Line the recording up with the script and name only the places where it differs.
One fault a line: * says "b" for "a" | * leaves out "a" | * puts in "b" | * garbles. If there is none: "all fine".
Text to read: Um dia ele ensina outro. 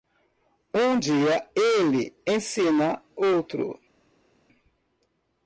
all fine